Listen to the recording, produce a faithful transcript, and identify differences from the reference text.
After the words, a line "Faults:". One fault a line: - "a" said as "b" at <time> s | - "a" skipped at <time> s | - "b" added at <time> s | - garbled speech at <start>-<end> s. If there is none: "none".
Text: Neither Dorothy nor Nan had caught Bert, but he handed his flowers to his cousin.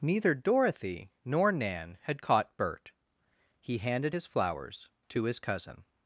Neither Dorothy nor Nan had caught Bert, he handed his flowers to his cousin.
Faults:
- "but" skipped at 2.9 s